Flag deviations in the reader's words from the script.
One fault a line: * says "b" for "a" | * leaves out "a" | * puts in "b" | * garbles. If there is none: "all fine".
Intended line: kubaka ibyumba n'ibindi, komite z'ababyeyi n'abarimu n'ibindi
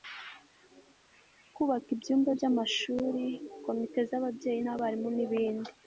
* says "by'amashuri" for "n'ibindi"